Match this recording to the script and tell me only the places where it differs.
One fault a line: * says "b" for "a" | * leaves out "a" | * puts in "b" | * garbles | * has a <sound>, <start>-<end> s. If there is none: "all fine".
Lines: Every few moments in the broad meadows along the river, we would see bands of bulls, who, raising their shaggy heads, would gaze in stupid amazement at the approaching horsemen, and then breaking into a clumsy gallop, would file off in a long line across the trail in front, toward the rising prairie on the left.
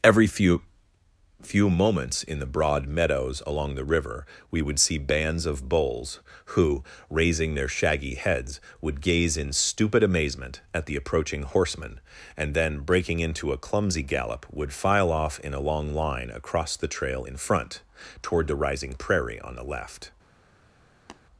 * puts in "few"
* has a tap, 21.1-21.2 s